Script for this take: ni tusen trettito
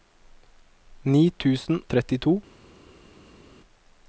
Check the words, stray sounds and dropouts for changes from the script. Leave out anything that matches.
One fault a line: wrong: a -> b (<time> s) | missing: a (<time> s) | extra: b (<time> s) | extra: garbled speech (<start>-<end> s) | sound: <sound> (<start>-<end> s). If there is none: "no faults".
no faults